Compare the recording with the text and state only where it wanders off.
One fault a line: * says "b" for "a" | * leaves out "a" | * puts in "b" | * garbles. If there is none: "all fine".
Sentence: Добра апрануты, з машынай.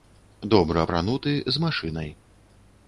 all fine